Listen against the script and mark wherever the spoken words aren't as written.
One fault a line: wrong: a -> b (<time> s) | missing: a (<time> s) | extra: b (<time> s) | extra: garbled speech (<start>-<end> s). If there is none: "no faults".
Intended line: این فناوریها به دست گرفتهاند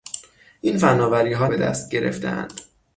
no faults